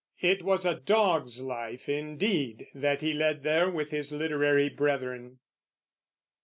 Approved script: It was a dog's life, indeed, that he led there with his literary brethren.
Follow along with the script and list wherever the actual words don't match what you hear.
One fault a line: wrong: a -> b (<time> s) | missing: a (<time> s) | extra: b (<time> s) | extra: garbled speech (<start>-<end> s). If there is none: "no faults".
no faults